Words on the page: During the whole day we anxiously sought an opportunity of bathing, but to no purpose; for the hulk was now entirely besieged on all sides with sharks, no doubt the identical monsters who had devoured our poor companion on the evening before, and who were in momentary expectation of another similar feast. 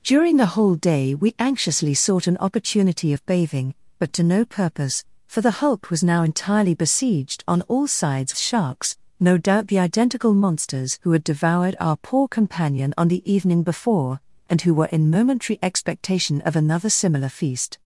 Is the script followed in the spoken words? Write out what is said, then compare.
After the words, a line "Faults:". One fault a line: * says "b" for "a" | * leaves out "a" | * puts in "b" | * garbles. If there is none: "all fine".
During the whole day we anxiously sought an opportunity of bathing, but to no purpose; for the hulk was now entirely besieged on all sides sharks, no doubt the identical monsters who had devoured our poor companion on the evening before, and who were in momentary expectation of another similar feast.
Faults:
* leaves out "with"